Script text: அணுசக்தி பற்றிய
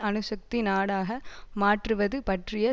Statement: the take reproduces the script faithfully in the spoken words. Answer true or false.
false